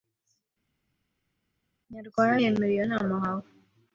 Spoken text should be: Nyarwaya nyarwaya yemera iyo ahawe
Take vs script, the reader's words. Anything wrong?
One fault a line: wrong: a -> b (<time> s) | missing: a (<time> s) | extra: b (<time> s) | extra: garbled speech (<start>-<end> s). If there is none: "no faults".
missing: nyarwaya (2.3 s)
extra: nama (2.9 s)